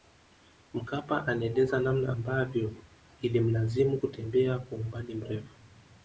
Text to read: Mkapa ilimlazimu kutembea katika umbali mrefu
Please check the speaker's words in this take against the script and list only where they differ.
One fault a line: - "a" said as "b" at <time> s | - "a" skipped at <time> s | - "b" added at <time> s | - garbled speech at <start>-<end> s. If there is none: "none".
- "anaeleza namna ambavyo" added at 1.3 s
- "katika" said as "kwa" at 4.6 s